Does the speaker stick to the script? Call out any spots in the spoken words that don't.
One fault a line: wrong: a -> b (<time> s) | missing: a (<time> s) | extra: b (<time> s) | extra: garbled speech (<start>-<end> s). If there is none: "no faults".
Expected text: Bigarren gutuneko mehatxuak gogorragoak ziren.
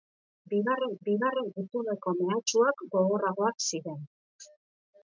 extra: bigarren (1.1 s)